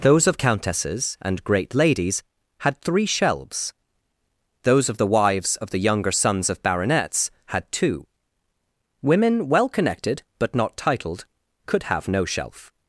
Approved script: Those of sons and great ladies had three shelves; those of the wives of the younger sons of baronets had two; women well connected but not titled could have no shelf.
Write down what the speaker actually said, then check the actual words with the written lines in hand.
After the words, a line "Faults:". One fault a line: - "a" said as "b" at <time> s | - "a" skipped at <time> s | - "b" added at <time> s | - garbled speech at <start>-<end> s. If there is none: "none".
Those of countesses and great ladies had three shelves; those of the wives of the younger sons of baronets had two; women well connected but not titled could have no shelf.
Faults:
- "sons" said as "countesses" at 0.4 s